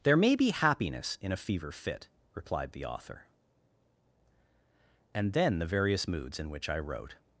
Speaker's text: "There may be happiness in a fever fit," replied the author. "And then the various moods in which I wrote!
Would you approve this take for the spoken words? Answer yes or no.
yes